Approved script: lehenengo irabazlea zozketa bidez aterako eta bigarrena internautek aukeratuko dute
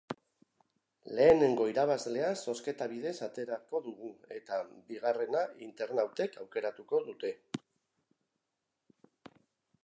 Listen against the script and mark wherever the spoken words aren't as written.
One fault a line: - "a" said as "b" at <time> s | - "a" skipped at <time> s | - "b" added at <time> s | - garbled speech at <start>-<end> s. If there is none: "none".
- "dugu" added at 3.9 s